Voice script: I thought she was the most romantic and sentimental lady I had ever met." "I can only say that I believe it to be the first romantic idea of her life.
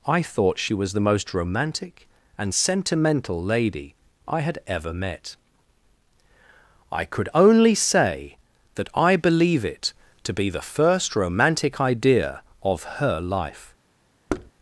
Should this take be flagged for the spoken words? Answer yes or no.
yes